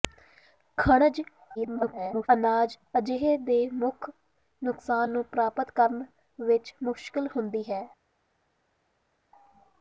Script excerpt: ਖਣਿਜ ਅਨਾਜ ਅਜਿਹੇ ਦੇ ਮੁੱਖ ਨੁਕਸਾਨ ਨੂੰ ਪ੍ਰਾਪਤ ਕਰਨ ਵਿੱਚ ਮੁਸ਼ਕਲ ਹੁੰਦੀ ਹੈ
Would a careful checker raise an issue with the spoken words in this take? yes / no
yes